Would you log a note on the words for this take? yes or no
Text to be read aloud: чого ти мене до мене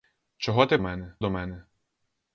no